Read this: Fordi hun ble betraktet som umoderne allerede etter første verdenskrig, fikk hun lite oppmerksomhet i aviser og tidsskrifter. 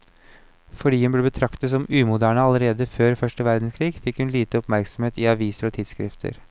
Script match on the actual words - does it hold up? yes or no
no